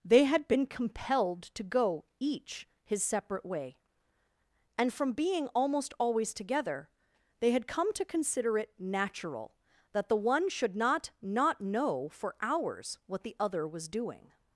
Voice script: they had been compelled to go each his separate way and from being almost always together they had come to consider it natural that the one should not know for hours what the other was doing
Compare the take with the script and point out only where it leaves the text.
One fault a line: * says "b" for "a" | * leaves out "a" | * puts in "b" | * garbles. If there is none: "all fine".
* puts in "not"